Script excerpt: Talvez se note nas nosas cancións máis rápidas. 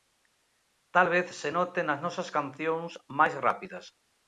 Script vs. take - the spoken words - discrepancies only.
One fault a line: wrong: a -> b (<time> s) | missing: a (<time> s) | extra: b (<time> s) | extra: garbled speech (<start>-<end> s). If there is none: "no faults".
no faults